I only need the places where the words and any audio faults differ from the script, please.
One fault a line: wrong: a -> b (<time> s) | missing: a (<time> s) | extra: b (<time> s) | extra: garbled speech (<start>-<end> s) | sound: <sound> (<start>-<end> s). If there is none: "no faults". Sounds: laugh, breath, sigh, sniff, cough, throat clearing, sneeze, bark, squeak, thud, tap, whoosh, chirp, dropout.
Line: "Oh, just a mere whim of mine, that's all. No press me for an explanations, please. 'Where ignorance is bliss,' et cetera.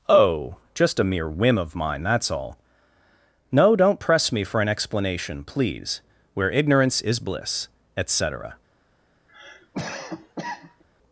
extra: don't (3.8 s)
wrong: explanations -> explanation (4.7 s)
sound: cough (9.3-10.8 s)